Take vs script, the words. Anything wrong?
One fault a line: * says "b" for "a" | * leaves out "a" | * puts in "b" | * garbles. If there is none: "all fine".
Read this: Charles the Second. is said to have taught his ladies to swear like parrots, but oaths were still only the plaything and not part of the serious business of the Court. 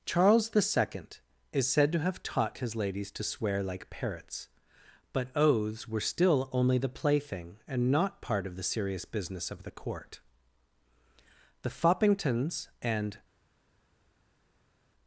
* puts in "The Foppingtons and"